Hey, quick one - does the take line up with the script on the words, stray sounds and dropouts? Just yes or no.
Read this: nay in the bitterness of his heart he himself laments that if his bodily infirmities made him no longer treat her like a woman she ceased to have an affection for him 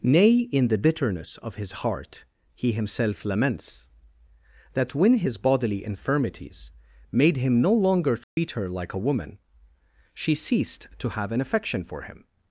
no